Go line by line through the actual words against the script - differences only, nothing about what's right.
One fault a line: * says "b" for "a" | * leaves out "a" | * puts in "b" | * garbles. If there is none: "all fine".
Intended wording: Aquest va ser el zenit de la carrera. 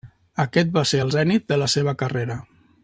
* puts in "seva"